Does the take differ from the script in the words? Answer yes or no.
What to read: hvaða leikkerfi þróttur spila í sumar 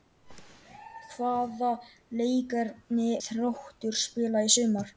no